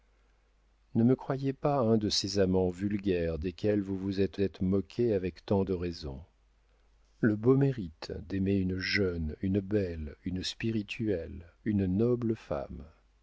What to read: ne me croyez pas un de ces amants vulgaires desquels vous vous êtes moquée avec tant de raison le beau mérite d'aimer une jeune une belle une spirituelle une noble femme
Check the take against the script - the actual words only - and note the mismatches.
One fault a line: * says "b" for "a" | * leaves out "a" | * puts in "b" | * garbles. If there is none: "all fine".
* puts in "êtes"